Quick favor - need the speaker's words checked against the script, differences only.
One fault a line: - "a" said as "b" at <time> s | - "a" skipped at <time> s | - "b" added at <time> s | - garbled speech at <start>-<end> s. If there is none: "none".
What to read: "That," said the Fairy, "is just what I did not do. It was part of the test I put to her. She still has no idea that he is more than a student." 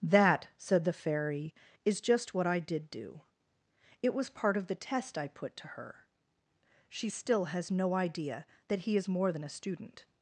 - "not" skipped at 2.9 s